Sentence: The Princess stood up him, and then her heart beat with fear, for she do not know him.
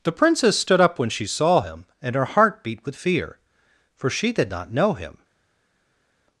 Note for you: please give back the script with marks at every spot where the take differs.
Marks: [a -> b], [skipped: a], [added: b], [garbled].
The Princess stood up [added: when she saw] him, and [skipped: then] her heart beat with fear, for she [do -> did] not know him.